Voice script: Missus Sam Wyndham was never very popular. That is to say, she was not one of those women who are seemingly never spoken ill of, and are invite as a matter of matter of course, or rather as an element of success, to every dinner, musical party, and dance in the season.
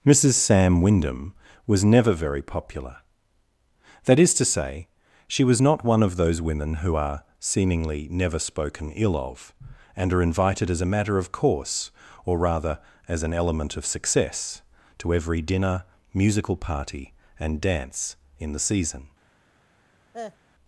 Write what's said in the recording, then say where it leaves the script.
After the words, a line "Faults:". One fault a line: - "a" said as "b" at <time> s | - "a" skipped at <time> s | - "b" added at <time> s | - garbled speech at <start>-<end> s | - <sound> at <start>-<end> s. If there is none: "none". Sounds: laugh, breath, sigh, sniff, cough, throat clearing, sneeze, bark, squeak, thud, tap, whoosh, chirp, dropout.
Missus Sam Wyndham was never very popular. That is to say, she was not one of those women who are seemingly never spoken ill of, and are invited as a matter of course, or rather as an element of success, to every dinner, musical party, and dance in the season.
Faults:
- "invite" said as "invited" at 10.2 s
- "matter of" skipped at 11.3 s
- cough at 20.1-20.4 s